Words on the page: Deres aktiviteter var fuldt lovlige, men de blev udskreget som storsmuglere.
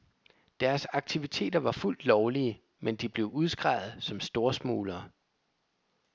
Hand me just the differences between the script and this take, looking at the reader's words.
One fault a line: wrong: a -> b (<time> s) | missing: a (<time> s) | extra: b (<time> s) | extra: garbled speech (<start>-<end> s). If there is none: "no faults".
no faults